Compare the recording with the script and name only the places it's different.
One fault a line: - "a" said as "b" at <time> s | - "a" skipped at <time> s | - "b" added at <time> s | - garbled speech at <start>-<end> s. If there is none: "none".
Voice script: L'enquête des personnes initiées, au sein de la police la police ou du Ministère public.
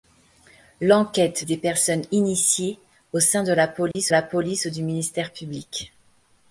none